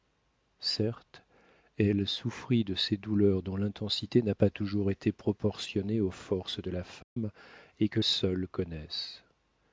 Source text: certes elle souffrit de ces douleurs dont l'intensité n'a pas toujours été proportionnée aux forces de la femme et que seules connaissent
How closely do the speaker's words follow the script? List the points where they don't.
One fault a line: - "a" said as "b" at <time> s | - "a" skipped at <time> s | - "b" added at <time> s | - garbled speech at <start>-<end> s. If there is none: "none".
none